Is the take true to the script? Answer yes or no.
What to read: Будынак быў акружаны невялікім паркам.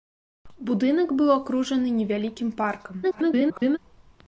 no